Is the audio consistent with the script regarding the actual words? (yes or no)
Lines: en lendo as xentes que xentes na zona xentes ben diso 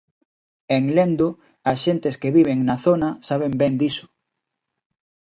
no